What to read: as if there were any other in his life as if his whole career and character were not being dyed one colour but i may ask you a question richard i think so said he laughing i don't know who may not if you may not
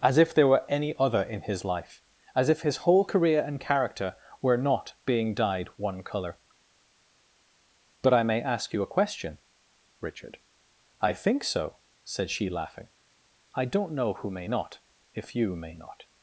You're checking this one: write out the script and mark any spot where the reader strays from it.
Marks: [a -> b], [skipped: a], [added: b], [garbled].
as if there were any other in his life as if his whole career and character were not being dyed one colour but i may ask you a question richard i think so said [he -> she] laughing i don't know who may not if you may not